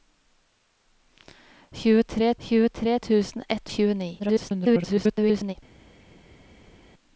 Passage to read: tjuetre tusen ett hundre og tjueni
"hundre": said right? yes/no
no